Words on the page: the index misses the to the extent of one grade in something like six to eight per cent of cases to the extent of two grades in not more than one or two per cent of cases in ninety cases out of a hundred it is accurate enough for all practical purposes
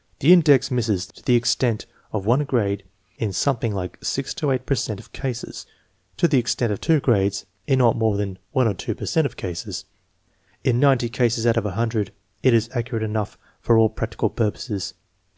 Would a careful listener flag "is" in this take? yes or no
no